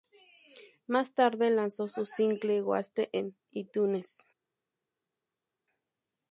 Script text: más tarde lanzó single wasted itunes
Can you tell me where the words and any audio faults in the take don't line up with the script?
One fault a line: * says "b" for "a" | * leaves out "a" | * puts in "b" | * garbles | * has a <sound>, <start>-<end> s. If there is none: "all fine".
* puts in "su"
* puts in "en"